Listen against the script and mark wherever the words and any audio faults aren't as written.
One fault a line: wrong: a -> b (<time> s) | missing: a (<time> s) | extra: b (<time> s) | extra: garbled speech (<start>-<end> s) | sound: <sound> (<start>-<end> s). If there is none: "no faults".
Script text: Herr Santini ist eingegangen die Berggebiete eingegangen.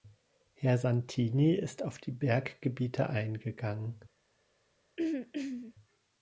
wrong: eingegangen -> auf (1.8 s)
sound: throat clearing (5.0-5.7 s)